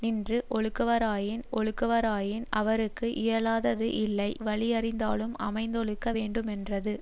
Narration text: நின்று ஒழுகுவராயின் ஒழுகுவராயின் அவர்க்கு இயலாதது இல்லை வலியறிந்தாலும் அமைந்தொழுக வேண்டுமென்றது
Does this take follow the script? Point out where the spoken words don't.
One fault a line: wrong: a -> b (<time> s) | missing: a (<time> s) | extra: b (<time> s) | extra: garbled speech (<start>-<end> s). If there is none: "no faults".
no faults